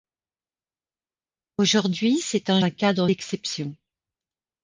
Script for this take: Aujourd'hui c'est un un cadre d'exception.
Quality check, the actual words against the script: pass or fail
pass